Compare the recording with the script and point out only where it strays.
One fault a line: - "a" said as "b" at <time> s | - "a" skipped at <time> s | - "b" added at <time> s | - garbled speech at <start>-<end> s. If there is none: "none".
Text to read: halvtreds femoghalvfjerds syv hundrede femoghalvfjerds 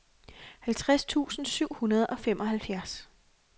- "femoghalvfjerds" said as "tusind" at 1.1 s
- "og" added at 2.1 s